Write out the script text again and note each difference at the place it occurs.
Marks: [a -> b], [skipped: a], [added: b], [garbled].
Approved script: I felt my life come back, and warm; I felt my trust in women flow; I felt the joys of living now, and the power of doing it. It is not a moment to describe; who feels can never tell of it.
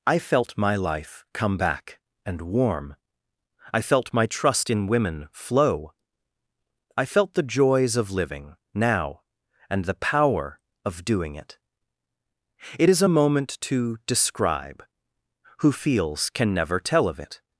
I felt my life come back, and warm; I felt my trust in women flow; I felt the joys of living now, and the power of doing it. It is [skipped: not] a moment to describe; who feels can never tell of it.